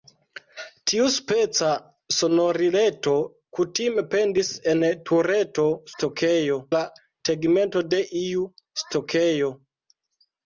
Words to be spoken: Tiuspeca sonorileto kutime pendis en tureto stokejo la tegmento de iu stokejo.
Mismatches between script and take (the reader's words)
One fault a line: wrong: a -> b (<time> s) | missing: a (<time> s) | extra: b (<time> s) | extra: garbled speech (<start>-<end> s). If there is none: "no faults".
no faults